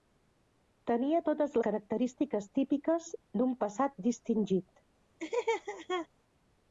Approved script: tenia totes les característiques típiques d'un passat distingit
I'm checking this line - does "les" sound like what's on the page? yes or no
no